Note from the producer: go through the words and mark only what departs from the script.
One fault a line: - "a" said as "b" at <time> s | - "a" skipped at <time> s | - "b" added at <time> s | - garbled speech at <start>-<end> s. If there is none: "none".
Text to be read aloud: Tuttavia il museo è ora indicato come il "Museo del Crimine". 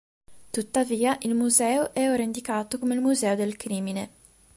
none